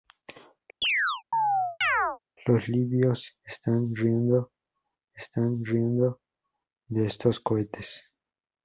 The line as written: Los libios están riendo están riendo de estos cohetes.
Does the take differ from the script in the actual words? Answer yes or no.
no